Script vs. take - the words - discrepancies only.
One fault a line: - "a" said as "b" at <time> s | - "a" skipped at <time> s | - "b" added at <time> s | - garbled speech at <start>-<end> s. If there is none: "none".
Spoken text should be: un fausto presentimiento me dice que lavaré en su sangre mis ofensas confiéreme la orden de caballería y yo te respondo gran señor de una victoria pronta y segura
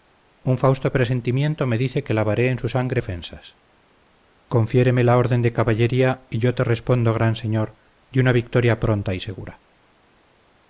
- "mis" skipped at 3.0 s